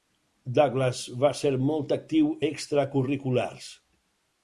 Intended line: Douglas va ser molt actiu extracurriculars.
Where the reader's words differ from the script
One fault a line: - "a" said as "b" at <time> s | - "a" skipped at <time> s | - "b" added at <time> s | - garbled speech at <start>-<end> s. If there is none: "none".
none